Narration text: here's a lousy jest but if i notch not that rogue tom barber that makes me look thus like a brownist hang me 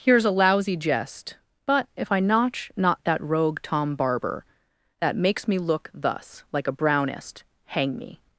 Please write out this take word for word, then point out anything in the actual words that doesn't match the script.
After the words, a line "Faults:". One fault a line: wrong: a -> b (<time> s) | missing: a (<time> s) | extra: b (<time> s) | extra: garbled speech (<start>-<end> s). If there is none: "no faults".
here's a lousy jest but if i notch not that rogue tom barber that makes me look thus like a brownist hang me
Faults:
no faults